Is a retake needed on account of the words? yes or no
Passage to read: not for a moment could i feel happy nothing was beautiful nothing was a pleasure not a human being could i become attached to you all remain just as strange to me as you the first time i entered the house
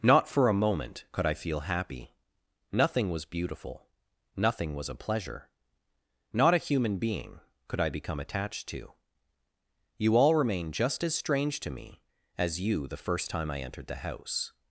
no